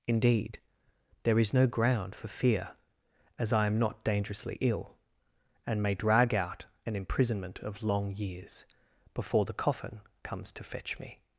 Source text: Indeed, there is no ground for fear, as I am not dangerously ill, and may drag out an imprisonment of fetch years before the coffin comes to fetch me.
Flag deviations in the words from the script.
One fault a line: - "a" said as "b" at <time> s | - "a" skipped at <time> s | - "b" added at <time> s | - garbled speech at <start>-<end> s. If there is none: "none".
- "fetch" said as "long" at 7.8 s